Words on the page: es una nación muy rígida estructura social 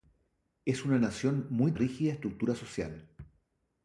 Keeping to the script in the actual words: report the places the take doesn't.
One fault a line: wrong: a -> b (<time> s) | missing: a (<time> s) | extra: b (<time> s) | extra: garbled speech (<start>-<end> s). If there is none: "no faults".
no faults